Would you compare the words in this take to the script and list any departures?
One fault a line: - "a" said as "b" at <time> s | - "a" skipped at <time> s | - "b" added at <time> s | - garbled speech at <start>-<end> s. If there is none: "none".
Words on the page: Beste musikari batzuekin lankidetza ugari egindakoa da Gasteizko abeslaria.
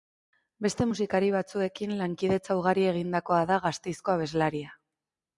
none